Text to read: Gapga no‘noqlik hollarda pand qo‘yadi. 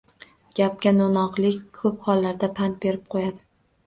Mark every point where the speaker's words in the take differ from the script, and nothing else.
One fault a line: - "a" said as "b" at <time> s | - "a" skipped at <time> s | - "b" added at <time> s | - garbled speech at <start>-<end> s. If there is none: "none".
- "ko‘p" added at 1.8 s
- "berib" added at 2.9 s